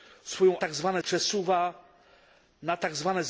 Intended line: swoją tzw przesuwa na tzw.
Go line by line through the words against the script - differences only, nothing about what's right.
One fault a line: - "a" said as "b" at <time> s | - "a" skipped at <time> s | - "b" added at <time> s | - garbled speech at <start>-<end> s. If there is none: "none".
none